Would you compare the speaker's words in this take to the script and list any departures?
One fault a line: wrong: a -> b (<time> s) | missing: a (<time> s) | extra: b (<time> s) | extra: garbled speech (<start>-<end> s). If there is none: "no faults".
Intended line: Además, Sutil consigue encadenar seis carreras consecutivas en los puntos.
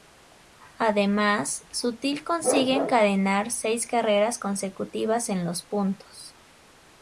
no faults